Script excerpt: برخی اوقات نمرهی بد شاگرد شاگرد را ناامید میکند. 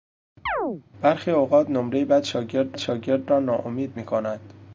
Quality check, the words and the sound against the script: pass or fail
fail